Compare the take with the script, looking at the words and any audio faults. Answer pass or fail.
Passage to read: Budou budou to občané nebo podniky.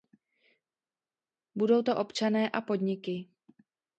fail